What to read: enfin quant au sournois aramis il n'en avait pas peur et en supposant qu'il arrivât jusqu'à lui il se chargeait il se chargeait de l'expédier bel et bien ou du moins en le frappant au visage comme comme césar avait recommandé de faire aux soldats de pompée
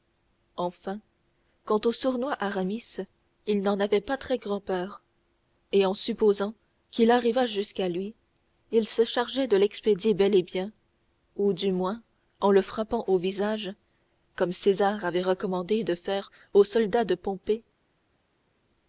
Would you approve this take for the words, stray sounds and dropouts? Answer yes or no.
no